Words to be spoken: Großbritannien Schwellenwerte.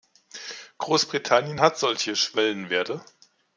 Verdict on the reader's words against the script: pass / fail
fail